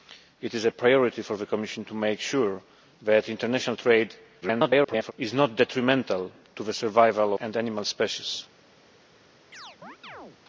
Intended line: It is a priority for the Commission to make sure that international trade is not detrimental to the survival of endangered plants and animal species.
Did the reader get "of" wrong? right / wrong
wrong